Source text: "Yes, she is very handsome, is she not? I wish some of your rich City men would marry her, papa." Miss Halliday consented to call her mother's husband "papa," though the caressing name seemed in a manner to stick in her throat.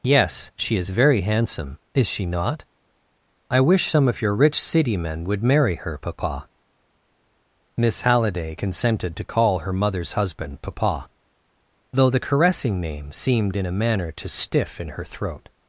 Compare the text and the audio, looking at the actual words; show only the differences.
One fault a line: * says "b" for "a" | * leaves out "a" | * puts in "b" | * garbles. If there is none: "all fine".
* says "stiff" for "stick"